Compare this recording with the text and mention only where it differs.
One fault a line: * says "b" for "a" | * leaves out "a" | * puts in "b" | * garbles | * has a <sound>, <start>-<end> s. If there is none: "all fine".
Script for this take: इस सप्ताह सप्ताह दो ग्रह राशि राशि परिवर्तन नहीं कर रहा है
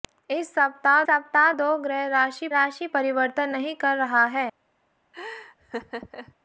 * has a laugh, 5.1-6.4 s